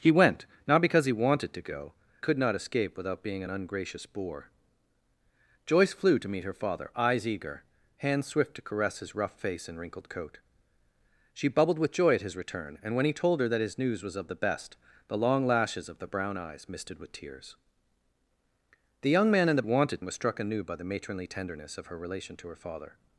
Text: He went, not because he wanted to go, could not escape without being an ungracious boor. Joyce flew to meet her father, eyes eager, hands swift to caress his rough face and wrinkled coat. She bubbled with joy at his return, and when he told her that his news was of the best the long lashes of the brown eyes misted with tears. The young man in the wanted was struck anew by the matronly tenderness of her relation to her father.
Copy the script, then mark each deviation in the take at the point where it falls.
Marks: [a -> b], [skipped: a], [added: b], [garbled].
He went, not because he wanted to go, could not escape without being an ungracious boor. Joyce flew to meet her father, eyes eager, hands swift to caress his rough face and wrinkled coat. She bubbled with joy at his return, and when he told her that his news was of the best the long lashes of the brown eyes misted with tears. The young man in the wanted was struck anew by the matronly tenderness of her relation to her father.